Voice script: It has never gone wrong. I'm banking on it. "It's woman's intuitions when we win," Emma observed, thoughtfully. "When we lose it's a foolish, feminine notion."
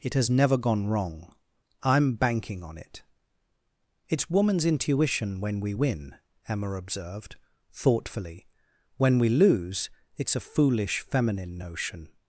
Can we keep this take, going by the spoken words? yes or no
no